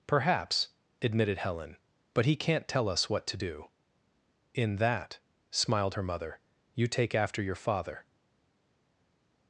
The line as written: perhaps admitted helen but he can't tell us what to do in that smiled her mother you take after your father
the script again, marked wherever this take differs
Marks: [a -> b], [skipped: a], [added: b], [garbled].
perhaps admitted helen but he can't tell us what to do in that smiled her mother you take after your father